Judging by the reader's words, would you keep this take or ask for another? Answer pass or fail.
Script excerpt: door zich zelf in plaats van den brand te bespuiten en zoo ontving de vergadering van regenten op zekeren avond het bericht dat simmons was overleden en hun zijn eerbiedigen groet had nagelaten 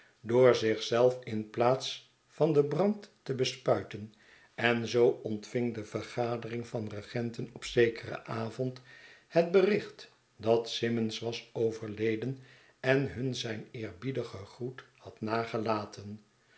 pass